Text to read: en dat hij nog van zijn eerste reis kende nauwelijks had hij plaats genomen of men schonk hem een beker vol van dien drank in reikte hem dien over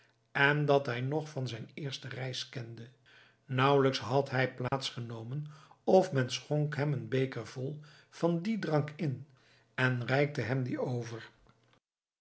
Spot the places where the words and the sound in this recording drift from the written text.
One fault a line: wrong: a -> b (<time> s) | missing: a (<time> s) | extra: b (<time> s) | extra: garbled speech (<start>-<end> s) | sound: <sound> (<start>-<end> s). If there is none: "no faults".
sound: dropout (4.7-4.7 s)
extra: en (9.7 s)